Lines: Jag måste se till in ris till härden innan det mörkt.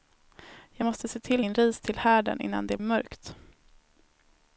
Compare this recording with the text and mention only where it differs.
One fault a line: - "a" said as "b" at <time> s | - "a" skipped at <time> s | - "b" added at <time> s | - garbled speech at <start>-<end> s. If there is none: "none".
none